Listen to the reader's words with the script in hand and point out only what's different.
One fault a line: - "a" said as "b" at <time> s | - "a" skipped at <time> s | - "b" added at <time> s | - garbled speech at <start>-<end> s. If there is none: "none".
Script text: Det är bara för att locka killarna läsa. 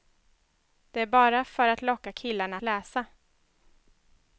none